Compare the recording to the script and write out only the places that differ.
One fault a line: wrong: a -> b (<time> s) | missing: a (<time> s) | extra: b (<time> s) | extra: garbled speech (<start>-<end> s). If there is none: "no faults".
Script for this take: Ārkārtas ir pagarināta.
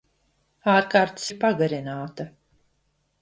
no faults